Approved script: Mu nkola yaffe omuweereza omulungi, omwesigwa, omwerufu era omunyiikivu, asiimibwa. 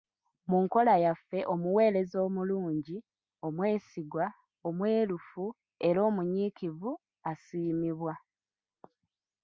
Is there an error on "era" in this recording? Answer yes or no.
no